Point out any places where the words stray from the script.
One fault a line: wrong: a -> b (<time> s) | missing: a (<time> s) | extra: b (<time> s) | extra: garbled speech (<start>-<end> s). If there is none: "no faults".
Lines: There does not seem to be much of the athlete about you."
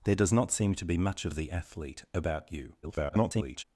extra: garbled speech (2.8-3.6 s)